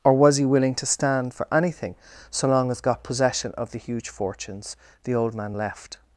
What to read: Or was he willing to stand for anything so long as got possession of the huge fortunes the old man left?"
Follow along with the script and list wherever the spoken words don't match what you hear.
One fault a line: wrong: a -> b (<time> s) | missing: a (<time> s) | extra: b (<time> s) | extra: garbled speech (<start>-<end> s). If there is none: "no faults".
no faults